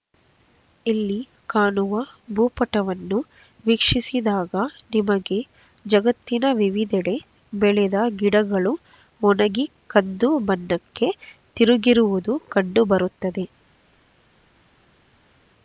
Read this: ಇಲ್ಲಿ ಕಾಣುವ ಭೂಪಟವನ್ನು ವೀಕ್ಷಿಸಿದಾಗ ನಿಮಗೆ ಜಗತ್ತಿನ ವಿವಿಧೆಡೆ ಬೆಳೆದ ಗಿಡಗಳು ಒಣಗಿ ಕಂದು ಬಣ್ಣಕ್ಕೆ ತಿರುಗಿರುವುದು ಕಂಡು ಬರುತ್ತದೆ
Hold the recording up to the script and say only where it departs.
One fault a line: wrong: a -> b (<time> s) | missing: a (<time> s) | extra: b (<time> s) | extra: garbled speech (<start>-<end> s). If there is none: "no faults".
no faults